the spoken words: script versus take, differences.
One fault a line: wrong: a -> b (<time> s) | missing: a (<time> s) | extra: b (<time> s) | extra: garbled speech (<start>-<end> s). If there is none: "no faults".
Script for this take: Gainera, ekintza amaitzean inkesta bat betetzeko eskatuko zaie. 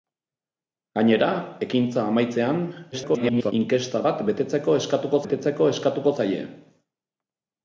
extra: garbled speech (2.9-3.5 s)
extra: betetzeko eskatuko (5.2 s)